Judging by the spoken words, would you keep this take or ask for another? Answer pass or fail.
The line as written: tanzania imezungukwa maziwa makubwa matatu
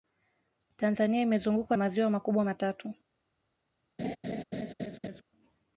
pass